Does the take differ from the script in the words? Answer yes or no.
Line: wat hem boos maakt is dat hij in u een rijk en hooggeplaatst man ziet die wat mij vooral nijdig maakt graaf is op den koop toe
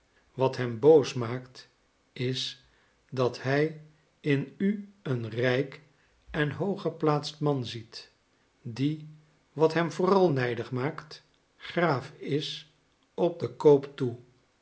yes